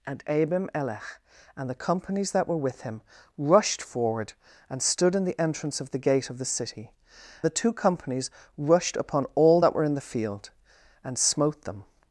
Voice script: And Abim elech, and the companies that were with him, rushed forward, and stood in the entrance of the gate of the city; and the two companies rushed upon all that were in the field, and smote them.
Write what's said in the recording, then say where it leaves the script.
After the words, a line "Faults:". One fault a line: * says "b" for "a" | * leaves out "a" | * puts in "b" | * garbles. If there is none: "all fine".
And Abim elech, and the companies that were with him, rushed forward, and stood in the entrance of the gate of the city; the two companies rushed upon all that were in the field, and smote them.
Faults:
* leaves out "and"